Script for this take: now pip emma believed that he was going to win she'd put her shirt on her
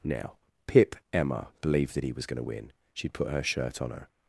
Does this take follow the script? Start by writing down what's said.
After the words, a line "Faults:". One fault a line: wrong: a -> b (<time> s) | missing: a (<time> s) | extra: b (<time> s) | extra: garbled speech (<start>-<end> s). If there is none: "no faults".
now pip emma believed that he was going to win she'd put her shirt on her
Faults:
no faults